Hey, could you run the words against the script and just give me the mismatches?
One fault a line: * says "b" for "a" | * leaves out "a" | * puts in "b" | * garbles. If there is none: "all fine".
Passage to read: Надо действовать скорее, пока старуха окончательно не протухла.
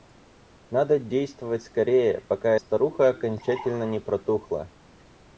all fine